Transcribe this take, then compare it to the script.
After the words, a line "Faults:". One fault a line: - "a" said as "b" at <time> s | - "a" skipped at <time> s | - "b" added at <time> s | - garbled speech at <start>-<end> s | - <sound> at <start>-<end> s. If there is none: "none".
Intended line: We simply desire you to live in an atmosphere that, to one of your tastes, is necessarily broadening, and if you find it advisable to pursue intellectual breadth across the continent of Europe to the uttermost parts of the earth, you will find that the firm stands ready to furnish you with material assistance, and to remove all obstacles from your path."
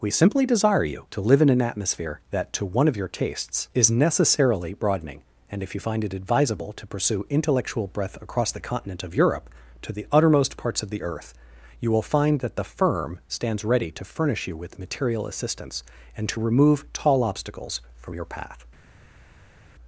We simply desire you to live in an atmosphere that, to one of your tastes, is necessarily broadening, and if you find it advisable to pursue intellectual breadth across the continent of Europe to the uttermost parts of the earth, you will find that the firm stands ready to furnish you with material assistance, and to remove tall obstacles from your path."
Faults:
- "all" said as "tall" at 16.9 s